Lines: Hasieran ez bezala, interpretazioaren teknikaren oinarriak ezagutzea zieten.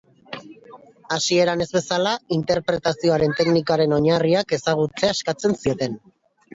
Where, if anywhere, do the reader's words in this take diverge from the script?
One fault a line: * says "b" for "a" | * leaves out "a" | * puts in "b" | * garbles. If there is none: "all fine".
* puts in "eskatzen"